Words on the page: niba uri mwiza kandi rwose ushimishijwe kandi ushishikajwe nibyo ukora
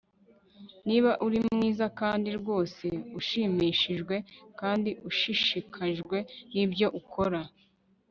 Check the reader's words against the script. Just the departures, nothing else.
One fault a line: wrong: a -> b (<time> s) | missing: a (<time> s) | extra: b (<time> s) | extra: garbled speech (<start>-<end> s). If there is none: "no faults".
no faults